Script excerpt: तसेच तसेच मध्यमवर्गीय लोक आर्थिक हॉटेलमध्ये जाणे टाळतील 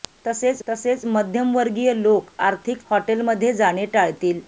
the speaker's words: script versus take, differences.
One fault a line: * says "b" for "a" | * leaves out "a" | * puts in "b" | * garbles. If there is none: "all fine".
all fine